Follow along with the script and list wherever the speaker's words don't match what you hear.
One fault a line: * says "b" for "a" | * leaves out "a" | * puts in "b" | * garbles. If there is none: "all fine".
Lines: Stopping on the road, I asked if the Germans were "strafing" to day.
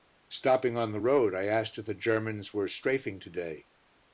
all fine